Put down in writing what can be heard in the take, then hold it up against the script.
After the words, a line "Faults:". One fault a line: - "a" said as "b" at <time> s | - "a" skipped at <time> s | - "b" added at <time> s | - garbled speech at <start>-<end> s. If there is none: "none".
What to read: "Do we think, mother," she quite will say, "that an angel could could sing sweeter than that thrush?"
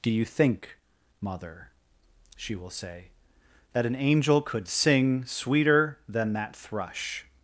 "Do you think, mother," she will say, "that an angel could sing sweeter than that thrush?"
Faults:
- "we" said as "you" at 0.1 s
- "quite" skipped at 2.5 s
- "could" skipped at 4.7 s